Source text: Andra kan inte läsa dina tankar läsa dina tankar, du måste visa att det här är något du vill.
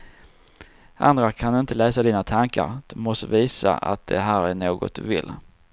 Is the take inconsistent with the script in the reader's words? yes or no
yes